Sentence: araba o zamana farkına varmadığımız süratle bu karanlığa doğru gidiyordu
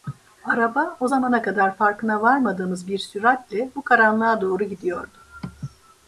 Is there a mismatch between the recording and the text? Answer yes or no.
yes